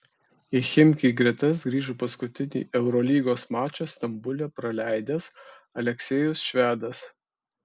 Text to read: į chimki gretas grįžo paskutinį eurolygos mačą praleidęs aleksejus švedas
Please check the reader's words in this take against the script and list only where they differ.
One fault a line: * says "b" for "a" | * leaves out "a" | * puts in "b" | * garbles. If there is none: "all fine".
* puts in "stambule"